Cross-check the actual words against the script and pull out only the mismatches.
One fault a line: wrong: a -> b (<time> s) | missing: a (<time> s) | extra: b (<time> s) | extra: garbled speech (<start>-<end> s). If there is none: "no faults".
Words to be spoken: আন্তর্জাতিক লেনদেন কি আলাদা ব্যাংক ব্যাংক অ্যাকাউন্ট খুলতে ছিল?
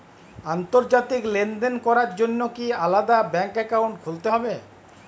extra: করার জন্য (1.9 s)
missing: ব্যাংক (3.5 s)
wrong: ছিল -> হবে (4.3 s)